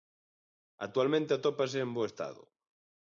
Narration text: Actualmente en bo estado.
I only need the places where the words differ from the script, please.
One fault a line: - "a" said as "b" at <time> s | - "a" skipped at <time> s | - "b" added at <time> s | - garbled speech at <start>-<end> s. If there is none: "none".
- "atópase" added at 1.3 s